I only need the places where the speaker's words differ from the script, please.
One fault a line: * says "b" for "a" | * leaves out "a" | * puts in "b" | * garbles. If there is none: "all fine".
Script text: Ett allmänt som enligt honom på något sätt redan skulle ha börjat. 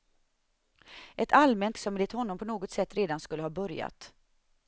all fine